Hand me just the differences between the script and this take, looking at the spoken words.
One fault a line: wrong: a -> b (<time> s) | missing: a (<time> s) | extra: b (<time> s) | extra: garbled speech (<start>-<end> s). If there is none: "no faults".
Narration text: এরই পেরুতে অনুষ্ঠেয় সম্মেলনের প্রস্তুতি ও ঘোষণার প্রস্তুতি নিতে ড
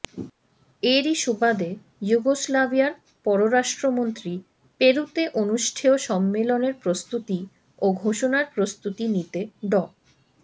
extra: সুবাদে যুগোস্লাভিয়ার পররাষ্ট্রমন্ত্রী (1.1 s)